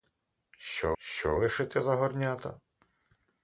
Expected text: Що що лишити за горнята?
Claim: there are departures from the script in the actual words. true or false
false